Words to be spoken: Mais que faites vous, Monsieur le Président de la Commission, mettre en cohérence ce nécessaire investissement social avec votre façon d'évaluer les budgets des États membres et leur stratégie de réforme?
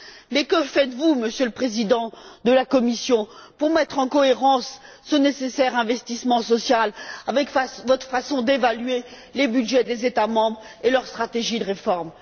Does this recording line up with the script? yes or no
no